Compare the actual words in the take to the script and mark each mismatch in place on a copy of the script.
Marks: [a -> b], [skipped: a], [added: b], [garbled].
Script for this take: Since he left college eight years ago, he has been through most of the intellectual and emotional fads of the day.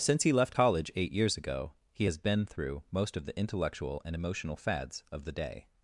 Since he left college eight years ago, he has been through most of the intellectual and emotional fads of the day.